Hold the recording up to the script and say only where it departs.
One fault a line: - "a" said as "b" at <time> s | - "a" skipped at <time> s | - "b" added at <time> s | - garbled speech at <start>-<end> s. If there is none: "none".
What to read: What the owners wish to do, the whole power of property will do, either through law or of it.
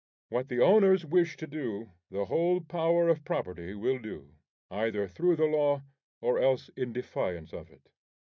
- "the" added at 5.3 s
- "else in defiance" added at 6.4 s